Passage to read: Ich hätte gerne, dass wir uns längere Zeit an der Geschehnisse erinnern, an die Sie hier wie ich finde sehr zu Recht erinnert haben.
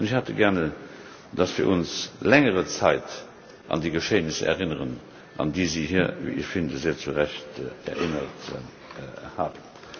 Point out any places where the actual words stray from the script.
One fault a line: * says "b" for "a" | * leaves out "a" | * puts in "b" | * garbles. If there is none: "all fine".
* says "die" for "der"